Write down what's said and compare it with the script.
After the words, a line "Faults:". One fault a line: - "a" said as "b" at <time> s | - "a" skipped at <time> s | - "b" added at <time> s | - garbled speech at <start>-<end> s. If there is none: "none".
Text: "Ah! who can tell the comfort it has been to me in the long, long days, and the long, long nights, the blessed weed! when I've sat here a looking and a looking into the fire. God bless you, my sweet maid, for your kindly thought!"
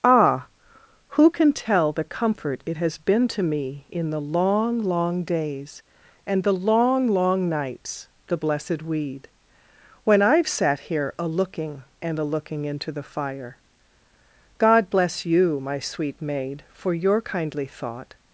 "Ah! who can tell the comfort it has been to me in the long, long days, and the long, long nights, the blessed weed! when I've sat here a looking and a looking into the fire. God bless you, my sweet maid, for your kindly thought!"
Faults:
none